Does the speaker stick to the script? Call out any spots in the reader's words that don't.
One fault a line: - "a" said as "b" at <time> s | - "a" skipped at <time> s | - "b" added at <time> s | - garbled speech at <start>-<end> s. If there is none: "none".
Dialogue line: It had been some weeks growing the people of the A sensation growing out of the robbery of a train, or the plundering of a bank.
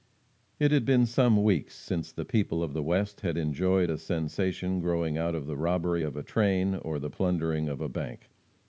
- "growing" said as "since" at 1.8 s
- "West had enjoyed" added at 2.8 s